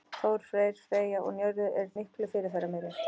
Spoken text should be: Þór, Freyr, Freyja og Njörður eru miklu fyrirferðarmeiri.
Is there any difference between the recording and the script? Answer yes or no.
no